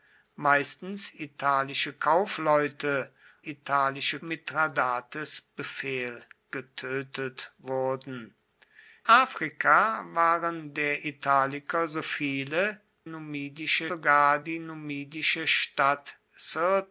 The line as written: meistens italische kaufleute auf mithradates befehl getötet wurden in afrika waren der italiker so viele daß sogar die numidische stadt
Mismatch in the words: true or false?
true